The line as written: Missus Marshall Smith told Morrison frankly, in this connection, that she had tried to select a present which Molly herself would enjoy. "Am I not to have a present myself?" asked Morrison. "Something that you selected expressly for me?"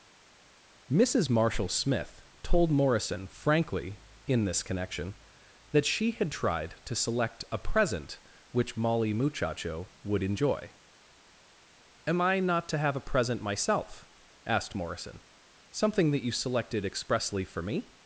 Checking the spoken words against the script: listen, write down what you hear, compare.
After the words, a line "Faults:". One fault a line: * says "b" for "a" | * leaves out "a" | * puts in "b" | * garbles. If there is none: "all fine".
Missus Marshall Smith told Morrison frankly, in this connection, that she had tried to select a present which Molly muchacho would enjoy. "Am I not to have a present myself?" asked Morrison. "Something that you selected expressly for me?"
Faults:
* says "muchacho" for "herself"